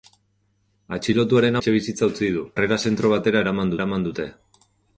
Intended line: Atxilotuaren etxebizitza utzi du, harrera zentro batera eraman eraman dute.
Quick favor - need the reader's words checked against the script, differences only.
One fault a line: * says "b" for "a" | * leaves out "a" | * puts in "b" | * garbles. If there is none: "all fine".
all fine